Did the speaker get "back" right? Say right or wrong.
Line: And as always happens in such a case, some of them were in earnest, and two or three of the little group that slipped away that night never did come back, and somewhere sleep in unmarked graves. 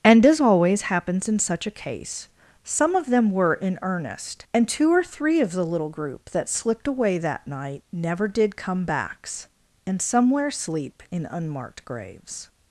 wrong